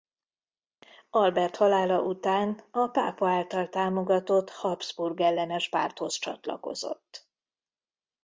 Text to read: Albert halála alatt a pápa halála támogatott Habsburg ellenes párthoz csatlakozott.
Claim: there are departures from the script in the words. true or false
true